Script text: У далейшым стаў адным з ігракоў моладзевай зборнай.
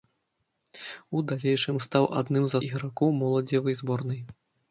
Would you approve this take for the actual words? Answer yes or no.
yes